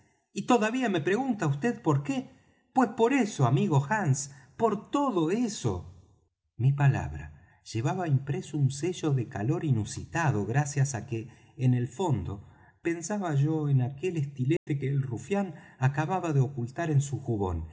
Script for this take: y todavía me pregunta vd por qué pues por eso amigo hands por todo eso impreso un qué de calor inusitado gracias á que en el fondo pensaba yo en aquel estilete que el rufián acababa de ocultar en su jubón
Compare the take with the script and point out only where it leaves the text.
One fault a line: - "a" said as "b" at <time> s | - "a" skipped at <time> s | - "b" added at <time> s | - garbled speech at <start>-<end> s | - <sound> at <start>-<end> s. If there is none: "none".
- "mi palabra llevaba" added at 6.6 s
- "qué" said as "sello" at 8.7 s
- dropout at 14.6-14.7 s